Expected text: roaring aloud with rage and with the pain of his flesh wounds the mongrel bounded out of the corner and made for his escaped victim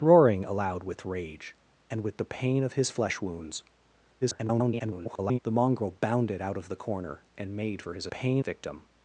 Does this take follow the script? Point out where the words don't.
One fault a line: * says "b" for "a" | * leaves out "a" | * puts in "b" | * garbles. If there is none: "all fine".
* garbles
* says "pain" for "escaped"